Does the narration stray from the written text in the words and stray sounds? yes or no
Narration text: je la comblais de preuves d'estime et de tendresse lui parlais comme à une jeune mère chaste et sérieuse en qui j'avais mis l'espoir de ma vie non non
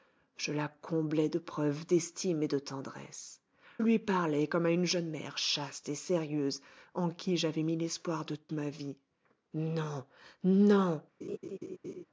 yes